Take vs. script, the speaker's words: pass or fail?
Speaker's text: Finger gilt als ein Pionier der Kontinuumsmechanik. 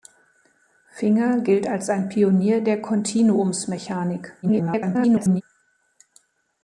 fail